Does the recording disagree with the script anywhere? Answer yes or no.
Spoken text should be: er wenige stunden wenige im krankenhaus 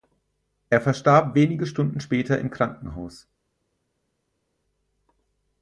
yes